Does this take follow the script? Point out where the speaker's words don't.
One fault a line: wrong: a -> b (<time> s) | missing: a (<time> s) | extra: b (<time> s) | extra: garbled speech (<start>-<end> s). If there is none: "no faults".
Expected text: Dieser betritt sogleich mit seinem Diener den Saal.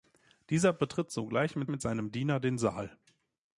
extra: mit (1.7 s)